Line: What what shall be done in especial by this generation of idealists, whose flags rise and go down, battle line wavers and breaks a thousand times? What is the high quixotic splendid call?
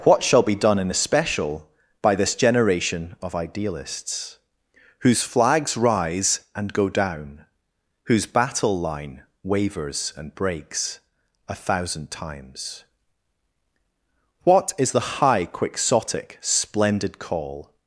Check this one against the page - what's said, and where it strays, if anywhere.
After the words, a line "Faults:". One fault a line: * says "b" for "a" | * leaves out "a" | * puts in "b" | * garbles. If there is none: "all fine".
What shall be done in especial by this generation of idealists, whose flags rise and go down, whose battle line wavers and breaks a thousand times? What is the high quixotic splendid call?
Faults:
* leaves out "what"
* puts in "whose"